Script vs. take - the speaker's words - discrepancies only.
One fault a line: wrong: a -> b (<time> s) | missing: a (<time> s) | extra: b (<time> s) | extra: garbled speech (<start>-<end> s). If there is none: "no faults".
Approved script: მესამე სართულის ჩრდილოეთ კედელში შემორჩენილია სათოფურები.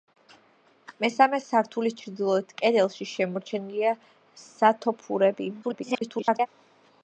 extra: garbled speech (5.6-6.5 s)